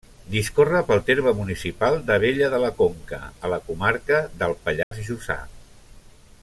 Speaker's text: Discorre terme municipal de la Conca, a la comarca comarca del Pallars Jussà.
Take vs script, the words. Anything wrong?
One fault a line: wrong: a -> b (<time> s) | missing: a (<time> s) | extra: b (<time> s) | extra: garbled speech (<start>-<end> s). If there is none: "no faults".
extra: pel (0.9 s)
extra: d'Abella (2.1 s)
missing: comarca (4.2 s)